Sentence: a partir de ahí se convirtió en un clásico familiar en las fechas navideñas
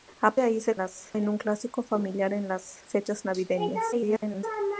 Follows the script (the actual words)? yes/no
no